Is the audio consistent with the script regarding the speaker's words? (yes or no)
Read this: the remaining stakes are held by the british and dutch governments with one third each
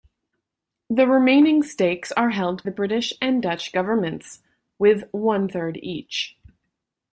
no